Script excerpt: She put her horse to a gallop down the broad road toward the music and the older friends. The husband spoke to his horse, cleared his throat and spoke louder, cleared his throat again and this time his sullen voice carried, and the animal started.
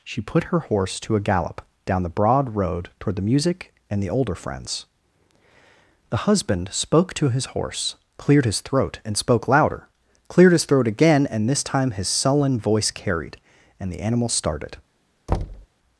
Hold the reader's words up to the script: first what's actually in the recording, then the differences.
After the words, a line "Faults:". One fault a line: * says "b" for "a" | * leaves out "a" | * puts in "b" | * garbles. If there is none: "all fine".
She put her horse to a gallop down the broad road toward the music and the older friends. The husband spoke to his horse, cleared his throat and spoke louder, cleared his throat again and this time his sullen voice carried, and the animal started.
Faults:
all fine